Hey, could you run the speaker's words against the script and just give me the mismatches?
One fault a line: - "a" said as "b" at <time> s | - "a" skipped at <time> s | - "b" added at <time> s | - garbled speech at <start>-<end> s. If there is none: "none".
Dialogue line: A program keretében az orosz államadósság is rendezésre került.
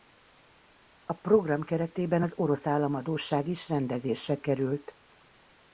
none